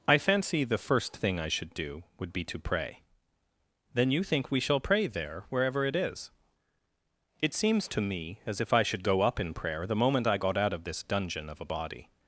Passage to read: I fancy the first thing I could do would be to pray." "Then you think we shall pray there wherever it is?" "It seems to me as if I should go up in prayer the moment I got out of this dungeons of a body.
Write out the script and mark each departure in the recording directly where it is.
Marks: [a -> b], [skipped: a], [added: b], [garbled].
I fancy the first thing I [could -> should] do would be to pray." "Then you think we shall pray there wherever it is?" "It seems to me as if I should go up in prayer the moment I got out of this [dungeons -> dungeon] of a body.